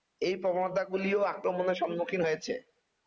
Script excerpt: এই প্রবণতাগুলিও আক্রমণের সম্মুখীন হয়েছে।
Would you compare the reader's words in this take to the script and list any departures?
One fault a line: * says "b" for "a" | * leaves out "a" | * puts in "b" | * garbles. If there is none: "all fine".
all fine